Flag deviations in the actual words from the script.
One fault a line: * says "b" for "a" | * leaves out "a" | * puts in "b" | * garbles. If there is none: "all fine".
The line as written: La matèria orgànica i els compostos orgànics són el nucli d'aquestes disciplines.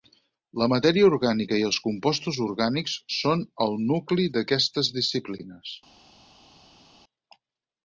all fine